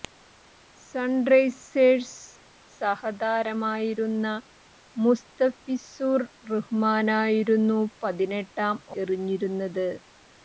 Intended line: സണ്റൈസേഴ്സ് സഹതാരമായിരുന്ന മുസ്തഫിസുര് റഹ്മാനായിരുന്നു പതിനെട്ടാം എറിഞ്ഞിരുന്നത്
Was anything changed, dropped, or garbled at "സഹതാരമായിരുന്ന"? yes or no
no